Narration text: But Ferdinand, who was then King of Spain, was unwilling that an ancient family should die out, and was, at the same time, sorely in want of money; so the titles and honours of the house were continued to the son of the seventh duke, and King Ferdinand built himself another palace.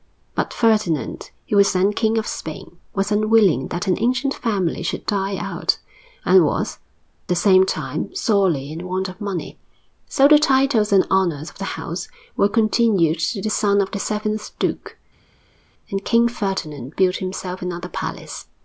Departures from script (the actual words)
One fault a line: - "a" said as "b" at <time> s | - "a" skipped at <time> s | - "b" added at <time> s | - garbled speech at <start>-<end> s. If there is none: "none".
- "at" skipped at 6.8 s